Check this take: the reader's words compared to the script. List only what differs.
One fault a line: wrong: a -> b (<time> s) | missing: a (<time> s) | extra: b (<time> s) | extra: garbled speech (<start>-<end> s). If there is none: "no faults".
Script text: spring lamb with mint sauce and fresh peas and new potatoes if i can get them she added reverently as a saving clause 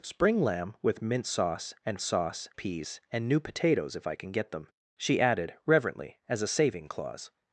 wrong: fresh -> sauce (2.0 s)